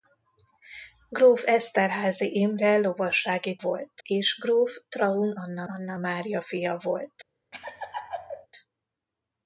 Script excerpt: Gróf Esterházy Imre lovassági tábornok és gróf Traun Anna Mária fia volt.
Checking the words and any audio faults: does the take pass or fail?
fail